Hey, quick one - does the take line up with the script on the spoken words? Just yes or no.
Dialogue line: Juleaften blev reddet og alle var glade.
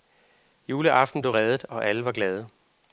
yes